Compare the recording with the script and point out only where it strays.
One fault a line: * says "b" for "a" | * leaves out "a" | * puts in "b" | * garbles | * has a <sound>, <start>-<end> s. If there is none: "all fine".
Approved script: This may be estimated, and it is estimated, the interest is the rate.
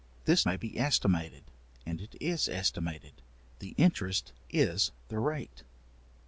all fine